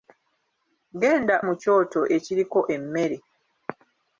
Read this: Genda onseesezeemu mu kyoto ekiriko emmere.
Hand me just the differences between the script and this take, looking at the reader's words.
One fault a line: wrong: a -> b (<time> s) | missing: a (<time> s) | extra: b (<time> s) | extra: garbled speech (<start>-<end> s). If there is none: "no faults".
missing: onseesezeemu (1.4 s)